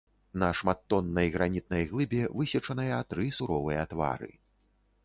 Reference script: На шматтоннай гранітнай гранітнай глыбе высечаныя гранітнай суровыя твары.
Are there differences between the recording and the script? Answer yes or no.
yes